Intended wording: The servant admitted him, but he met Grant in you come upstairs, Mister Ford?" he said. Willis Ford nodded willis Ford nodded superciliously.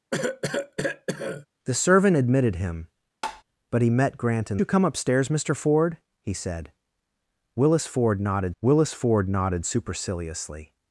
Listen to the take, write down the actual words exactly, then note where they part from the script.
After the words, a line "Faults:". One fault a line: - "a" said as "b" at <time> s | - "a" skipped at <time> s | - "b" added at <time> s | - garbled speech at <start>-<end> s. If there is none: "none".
The servant admitted him, but he met Grant in you come upstairs, Mister Ford?" he said. Willis Ford nodded willis Ford nodded superciliously.
Faults:
none